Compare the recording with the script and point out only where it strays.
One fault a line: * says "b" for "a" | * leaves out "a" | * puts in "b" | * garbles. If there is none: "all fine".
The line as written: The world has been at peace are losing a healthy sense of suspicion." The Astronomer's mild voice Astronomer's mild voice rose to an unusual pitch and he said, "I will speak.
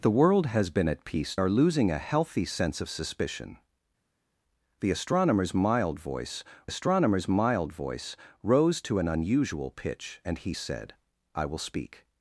all fine